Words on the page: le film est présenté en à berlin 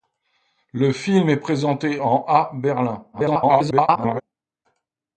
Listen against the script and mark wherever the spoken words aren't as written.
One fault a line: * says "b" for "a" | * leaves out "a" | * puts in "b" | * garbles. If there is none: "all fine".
* garbles